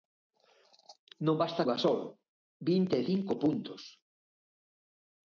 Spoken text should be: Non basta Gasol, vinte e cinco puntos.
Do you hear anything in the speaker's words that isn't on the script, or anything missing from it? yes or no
no